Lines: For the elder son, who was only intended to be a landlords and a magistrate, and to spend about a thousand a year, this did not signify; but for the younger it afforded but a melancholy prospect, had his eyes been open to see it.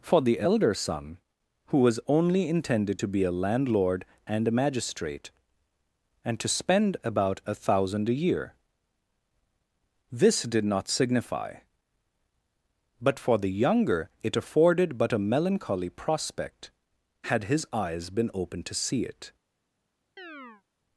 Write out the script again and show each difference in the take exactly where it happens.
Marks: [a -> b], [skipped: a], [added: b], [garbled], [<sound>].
For the elder son, who was only intended to be a [landlords -> landlord] and a magistrate, and to spend about a thousand a year, this did not signify; but for the younger it afforded but a melancholy prospect, had his eyes been open to see it. [chirp]